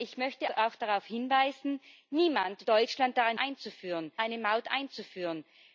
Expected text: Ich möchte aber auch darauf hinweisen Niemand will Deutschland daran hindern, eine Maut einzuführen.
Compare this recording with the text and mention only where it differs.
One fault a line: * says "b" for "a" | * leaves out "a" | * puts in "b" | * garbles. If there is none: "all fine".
* leaves out "aber"
* leaves out "will"
* says "einzuführen" for "hindern"